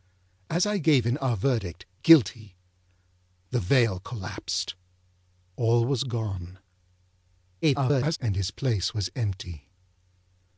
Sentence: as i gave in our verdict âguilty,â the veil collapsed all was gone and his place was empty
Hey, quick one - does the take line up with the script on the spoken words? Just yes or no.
no